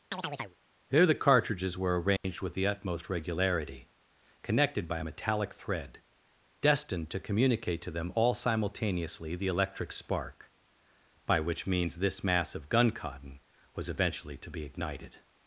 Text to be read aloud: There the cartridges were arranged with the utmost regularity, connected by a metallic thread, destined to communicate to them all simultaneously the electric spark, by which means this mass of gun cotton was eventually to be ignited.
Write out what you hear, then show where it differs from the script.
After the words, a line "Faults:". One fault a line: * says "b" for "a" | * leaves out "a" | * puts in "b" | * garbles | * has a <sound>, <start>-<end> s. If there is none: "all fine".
There the cartridges were arranged with the utmost regularity, connected by a metallic thread, destined to communicate to them all simultaneously the electric spark, by which means this mass of gun cotton was eventually to be ignited.
Faults:
* has a chirp, 0.1-0.6 s
* has a dropout, 2.2-2.2 s